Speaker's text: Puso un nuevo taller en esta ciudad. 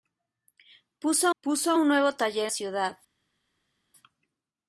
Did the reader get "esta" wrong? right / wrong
wrong